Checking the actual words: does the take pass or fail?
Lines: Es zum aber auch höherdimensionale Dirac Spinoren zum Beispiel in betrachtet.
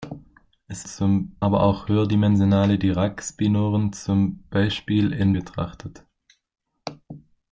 pass